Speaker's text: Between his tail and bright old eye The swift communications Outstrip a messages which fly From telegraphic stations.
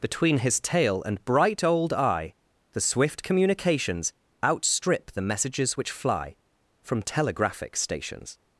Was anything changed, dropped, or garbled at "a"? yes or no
yes